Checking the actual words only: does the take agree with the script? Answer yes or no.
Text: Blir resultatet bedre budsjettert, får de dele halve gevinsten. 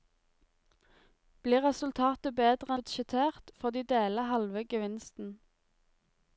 yes